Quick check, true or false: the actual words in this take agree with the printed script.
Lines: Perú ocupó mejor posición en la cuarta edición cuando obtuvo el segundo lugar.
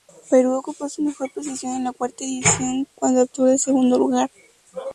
false